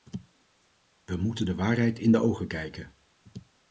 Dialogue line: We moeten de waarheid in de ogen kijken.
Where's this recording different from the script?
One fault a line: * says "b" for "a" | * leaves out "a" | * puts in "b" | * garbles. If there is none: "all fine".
all fine